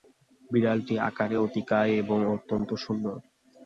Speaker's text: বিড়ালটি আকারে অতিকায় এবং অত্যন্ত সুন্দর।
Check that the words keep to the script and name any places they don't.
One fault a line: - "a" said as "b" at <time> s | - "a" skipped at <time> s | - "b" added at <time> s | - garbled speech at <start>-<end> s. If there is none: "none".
none